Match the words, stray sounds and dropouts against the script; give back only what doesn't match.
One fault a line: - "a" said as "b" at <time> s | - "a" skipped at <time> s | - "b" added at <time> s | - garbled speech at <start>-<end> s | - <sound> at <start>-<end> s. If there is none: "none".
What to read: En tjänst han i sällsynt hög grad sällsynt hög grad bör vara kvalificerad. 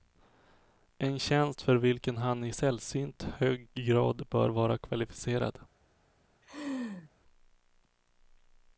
- "för vilken" added at 1.6 s
- "sällsynt hög grad" skipped at 4.3 s
- laugh at 6.4-7.1 s